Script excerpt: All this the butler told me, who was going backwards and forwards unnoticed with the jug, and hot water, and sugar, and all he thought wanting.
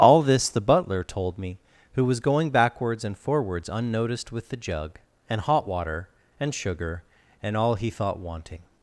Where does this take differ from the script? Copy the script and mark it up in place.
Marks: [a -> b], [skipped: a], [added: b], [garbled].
All this the butler told me, who was going backwards and forwards unnoticed with the jug, and hot water, and sugar, and all he thought wanting.